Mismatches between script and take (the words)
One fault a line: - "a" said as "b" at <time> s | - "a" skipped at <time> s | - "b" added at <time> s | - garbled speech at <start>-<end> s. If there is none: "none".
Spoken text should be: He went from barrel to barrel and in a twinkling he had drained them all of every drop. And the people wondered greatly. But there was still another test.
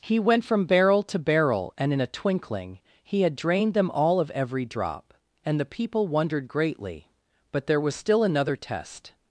none